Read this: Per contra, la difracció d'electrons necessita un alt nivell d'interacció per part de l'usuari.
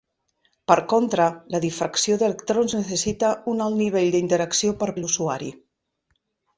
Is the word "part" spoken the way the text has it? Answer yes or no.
no